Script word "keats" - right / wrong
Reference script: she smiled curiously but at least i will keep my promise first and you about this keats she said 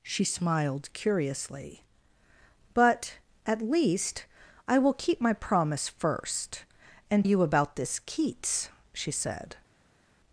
right